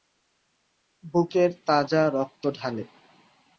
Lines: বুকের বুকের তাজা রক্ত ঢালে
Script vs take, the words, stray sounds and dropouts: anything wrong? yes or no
yes